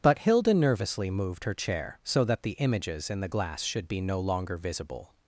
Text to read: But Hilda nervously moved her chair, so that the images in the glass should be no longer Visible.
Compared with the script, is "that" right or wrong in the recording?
right